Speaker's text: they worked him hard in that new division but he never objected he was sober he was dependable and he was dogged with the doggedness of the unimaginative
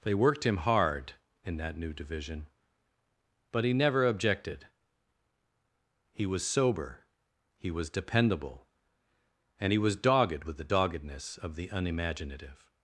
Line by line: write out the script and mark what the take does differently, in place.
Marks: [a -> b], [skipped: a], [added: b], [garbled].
they worked him hard in that new division but he never objected he was sober he was dependable and he was dogged with the doggedness of the unimaginative